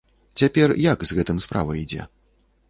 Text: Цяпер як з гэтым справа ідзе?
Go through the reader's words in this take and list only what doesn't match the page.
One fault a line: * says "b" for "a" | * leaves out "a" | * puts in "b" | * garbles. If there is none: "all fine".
all fine